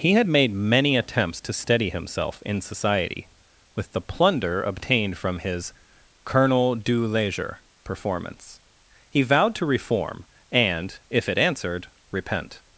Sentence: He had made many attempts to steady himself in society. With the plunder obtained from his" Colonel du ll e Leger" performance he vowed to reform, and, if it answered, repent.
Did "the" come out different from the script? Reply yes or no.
no